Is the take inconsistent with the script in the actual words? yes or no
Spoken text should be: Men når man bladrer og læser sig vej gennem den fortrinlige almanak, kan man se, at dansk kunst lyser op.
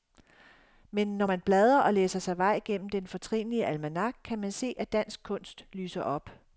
no